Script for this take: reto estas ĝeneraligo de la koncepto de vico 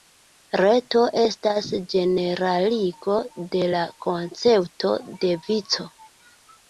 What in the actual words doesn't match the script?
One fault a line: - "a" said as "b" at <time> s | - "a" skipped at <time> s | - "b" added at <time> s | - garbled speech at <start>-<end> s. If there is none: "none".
none